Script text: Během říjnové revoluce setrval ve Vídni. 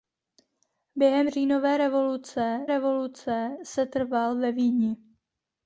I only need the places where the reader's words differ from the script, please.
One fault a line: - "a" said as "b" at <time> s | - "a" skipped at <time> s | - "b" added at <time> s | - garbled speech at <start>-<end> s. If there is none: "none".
- "revoluce" added at 2.7 s